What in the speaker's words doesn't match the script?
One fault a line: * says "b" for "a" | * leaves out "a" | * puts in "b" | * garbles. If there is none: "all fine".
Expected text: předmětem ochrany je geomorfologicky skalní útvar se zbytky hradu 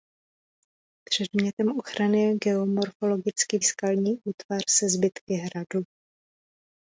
all fine